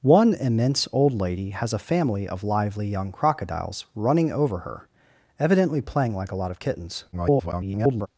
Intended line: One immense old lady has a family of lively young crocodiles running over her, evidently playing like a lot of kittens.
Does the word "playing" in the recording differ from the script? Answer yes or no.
no